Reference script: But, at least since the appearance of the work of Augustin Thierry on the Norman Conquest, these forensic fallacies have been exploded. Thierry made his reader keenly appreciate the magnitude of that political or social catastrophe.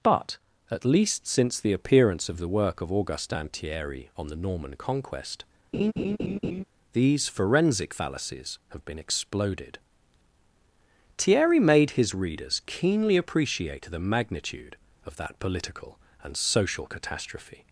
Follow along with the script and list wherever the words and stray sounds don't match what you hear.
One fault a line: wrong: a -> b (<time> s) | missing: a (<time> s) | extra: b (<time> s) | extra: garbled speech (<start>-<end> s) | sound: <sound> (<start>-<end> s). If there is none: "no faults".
sound: laugh (5.7-6.6 s)
wrong: reader -> readers (12.1 s)
wrong: or -> and (16.2 s)